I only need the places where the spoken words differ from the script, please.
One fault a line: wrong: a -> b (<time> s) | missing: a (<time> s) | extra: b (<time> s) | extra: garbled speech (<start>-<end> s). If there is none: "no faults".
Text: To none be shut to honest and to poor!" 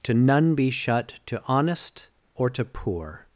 wrong: and -> or (2.4 s)